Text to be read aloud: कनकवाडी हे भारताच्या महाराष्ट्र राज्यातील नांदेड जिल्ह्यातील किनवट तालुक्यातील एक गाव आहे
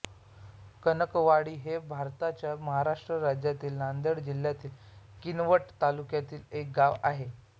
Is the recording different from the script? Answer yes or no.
no